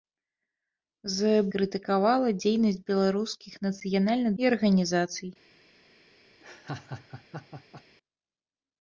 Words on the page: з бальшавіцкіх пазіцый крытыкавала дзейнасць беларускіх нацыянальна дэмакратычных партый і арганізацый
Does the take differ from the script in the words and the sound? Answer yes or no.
yes